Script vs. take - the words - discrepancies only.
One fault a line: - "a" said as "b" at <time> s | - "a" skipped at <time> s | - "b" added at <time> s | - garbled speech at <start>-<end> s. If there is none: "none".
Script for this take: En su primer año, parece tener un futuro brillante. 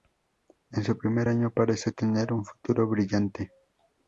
none